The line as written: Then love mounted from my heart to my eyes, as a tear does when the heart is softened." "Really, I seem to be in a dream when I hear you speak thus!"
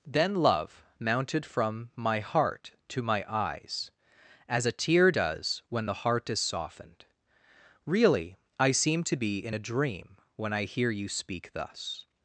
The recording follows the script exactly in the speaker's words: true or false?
true